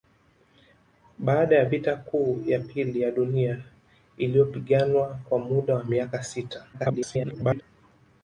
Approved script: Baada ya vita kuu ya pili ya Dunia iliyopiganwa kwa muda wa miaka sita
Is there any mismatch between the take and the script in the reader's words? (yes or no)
yes